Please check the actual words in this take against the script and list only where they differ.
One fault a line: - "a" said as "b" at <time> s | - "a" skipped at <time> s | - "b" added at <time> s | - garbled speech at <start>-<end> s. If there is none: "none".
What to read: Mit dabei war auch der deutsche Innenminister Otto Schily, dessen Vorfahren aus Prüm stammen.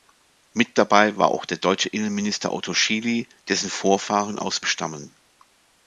- "Prüm" skipped at 4.6 s